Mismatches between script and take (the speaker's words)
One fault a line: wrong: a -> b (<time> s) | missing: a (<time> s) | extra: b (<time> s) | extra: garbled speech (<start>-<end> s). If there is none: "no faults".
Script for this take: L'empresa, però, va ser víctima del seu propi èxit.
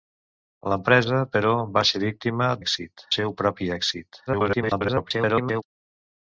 wrong: del -> èxit (2.6 s)
extra: garbled speech (4.3-5.6 s)